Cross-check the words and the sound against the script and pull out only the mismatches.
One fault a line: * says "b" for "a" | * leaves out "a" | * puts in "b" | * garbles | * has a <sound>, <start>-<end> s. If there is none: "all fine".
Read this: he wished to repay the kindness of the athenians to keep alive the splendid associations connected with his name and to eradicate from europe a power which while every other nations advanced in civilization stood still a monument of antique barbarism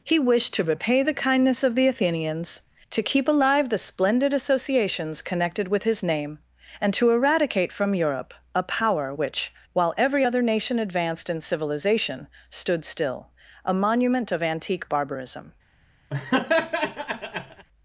* says "nation" for "nations"
* has a laugh, 16.1-17.7 s